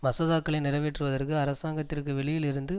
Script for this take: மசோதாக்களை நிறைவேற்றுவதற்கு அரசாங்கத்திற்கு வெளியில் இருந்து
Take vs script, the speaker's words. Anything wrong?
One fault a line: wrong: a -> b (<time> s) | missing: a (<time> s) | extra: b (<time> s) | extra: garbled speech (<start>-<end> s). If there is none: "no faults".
no faults